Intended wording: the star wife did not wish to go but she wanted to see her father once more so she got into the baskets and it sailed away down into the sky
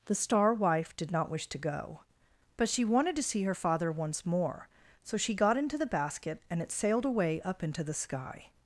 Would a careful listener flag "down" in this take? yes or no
yes